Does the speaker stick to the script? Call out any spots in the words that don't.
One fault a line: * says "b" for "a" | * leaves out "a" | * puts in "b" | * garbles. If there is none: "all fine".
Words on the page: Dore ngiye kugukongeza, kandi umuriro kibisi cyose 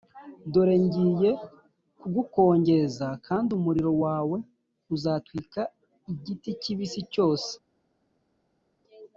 * puts in "wawe uzatwika igiti"